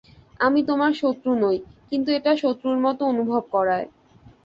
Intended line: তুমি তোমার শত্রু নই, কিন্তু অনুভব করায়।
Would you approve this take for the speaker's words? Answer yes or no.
no